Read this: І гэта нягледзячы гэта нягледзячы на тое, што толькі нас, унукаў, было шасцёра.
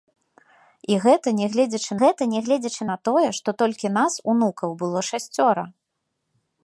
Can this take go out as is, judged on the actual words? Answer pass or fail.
pass